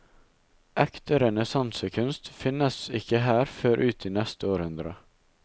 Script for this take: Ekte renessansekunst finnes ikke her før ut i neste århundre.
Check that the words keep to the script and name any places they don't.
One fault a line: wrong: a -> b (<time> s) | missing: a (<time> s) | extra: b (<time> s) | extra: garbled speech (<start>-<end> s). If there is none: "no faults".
no faults